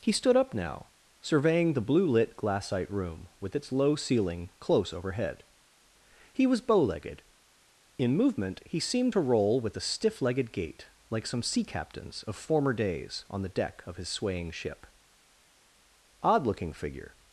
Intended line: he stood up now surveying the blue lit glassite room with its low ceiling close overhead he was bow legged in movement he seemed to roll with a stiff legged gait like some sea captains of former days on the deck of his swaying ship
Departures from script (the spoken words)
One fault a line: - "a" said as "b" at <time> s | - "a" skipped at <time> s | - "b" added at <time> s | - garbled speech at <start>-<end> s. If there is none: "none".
- "odd looking figure" added at 16.2 s